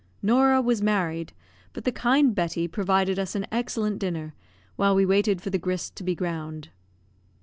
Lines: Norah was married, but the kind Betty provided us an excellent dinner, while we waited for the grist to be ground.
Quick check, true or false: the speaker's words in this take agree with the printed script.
true